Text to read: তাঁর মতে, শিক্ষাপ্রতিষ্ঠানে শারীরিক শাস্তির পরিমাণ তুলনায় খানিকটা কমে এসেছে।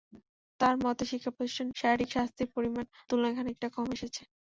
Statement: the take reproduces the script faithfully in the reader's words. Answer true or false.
true